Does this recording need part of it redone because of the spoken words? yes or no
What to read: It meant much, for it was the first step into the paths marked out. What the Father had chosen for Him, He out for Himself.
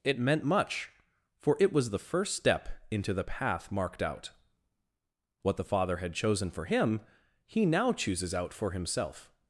yes